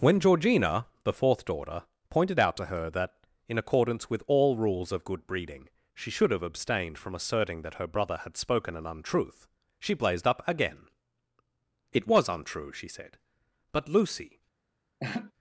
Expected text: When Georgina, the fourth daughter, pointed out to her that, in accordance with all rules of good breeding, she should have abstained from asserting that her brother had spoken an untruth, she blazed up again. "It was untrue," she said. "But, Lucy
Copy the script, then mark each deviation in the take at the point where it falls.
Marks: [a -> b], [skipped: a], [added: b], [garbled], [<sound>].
When Georgina, the fourth daughter, pointed out to her that, in accordance with all rules of good breeding, she should have abstained from asserting that her brother had spoken an untruth, she blazed up again. "It was untrue," she said. "But, Lucy [laugh]